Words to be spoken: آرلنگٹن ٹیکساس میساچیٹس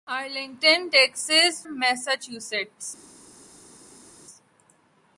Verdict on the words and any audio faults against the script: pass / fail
pass